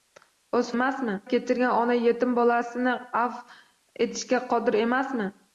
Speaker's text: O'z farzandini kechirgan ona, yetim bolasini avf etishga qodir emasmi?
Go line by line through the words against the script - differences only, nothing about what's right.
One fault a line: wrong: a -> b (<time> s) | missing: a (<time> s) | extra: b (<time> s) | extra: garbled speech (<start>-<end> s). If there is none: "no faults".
wrong: farzandini -> emasmi (0.8 s)